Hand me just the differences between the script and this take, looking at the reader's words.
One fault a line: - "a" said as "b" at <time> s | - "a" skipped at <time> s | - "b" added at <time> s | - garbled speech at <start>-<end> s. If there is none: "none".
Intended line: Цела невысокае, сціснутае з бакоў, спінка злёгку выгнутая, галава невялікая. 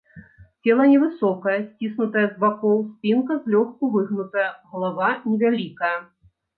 none